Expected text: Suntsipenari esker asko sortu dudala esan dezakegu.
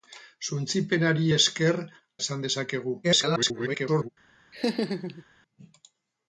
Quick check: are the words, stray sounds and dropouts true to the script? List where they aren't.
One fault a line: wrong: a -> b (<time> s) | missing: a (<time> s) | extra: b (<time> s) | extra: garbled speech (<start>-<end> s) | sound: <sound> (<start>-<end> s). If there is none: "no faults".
missing: asko sortu dudala (1.8 s)
extra: garbled speech (3.0-4.1 s)
sound: laugh (4.5-5.2 s)